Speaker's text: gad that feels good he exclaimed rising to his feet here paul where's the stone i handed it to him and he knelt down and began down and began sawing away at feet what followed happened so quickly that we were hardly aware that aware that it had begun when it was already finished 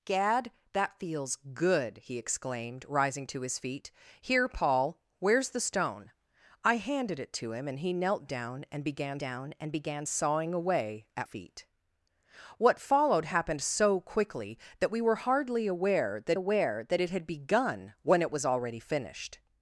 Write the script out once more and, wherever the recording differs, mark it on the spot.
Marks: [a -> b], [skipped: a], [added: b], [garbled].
gad that feels good he exclaimed rising to his feet here paul where's the stone i handed it to him and he knelt down and began down and began sawing away at feet what followed happened so quickly that we were hardly aware that aware that it had begun when it was already finished